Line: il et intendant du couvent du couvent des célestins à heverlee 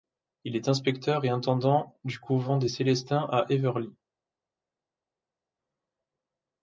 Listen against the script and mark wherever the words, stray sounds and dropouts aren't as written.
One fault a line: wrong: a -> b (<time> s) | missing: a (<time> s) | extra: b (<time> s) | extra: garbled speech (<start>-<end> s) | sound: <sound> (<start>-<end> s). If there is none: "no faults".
extra: est inspecteur (0.6 s)
missing: du couvent (2.6 s)